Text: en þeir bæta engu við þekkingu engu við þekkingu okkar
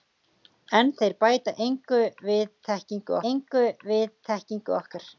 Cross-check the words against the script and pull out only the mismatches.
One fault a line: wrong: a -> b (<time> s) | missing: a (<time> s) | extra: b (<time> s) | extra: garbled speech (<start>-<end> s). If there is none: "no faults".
no faults